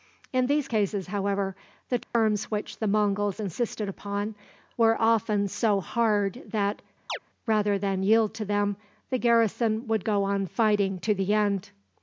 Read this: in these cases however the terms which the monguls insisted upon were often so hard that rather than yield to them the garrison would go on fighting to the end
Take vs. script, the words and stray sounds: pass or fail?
fail